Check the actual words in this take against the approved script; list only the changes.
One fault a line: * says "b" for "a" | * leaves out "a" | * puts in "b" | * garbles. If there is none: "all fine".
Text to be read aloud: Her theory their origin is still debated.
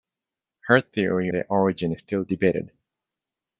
all fine